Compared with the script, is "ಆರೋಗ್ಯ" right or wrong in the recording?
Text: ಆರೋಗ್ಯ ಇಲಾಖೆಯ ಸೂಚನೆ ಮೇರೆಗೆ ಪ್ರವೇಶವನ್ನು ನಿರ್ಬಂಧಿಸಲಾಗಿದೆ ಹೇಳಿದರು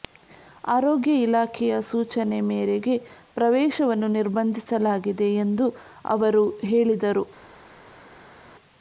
right